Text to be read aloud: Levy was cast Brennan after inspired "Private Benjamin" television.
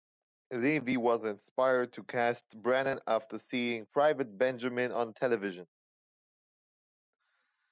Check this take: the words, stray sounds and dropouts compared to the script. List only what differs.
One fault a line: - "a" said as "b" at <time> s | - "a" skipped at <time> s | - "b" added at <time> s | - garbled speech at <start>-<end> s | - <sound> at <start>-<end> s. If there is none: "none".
- "inspired to" added at 1.2 s
- "inspired" said as "seeing" at 3.4 s
- "on" added at 4.9 s